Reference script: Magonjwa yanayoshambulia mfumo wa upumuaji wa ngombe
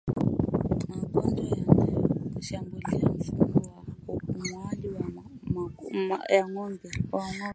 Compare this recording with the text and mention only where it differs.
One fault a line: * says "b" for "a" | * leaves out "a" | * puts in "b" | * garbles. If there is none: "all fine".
all fine